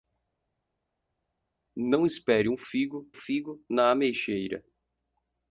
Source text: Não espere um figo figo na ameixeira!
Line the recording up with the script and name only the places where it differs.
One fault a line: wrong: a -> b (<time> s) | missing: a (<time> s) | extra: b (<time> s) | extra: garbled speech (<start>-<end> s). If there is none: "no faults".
no faults